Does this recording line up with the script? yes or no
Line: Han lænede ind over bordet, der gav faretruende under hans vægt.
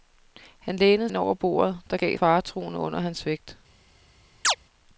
yes